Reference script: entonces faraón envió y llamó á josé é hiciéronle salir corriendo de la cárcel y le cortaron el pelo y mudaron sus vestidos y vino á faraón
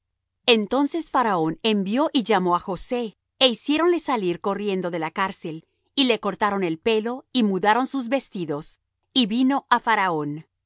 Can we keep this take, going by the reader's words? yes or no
yes